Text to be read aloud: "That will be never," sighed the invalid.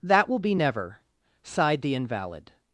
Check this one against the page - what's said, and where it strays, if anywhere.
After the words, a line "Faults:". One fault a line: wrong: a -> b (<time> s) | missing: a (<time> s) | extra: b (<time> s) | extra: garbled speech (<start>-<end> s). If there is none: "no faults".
"That will be never," sighed the invalid.
Faults:
no faults